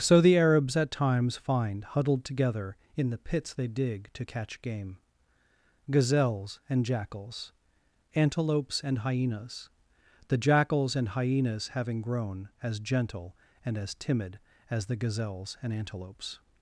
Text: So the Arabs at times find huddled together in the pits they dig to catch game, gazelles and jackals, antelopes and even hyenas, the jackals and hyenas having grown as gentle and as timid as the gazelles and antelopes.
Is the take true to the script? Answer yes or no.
no